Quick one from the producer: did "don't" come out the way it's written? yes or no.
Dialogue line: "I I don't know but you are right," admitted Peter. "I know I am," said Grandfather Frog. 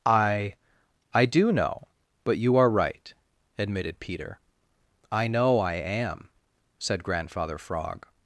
no